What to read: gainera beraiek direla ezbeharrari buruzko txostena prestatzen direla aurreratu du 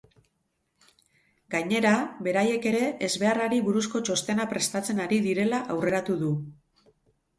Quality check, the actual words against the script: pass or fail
fail